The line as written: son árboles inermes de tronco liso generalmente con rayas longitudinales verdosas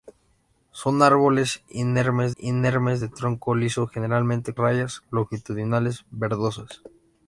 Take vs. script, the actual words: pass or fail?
fail